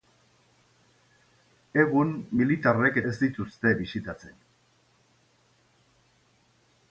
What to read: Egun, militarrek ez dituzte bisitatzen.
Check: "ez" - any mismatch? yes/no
no